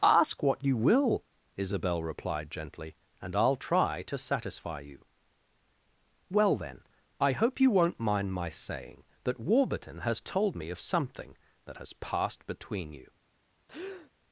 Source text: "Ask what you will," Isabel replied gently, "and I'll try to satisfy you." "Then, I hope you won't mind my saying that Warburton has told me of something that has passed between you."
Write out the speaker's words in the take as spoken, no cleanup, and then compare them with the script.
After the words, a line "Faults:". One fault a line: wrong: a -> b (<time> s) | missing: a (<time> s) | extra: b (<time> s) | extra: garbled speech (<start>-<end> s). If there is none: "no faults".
"Ask what you will," Isabel replied gently, "and I'll try to satisfy you." "Well then, I hope you won't mind my saying that Warburton has told me of something that has passed between you."
Faults:
extra: Well (6.3 s)